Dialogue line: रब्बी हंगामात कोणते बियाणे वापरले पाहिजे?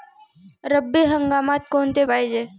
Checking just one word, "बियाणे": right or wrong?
wrong